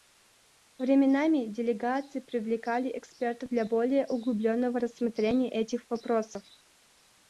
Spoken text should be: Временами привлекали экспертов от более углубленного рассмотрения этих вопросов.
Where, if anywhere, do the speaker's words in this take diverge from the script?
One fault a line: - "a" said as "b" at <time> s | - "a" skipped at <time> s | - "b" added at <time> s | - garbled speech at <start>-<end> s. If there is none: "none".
- "делегации" added at 1.4 s
- "от" said as "для" at 3.5 s